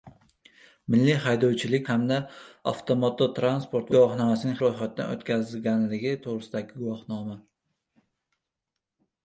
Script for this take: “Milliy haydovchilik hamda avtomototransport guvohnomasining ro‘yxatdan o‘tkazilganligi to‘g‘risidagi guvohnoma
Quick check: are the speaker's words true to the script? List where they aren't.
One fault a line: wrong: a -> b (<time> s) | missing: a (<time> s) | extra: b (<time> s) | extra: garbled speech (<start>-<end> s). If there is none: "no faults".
no faults